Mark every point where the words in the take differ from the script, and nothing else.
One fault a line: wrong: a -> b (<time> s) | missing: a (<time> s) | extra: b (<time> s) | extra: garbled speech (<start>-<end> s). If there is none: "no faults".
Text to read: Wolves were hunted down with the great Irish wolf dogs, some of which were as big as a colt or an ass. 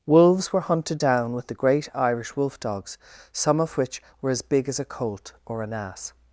no faults